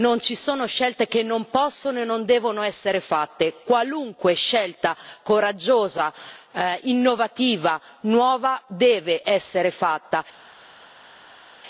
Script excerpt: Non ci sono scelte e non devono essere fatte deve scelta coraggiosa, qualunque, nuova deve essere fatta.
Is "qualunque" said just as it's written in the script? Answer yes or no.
no